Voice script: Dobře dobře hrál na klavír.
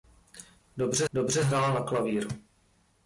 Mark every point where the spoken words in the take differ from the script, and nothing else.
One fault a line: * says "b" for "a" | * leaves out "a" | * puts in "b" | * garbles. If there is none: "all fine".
all fine